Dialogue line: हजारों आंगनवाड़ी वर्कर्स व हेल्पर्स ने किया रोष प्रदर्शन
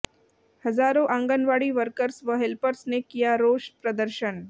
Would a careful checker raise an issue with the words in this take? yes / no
no